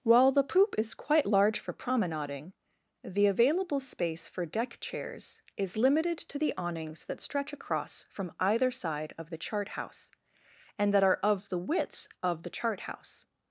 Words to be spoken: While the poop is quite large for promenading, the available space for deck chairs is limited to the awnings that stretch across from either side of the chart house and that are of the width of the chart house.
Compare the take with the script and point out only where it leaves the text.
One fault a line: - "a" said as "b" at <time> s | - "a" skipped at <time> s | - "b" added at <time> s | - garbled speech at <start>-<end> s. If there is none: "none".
none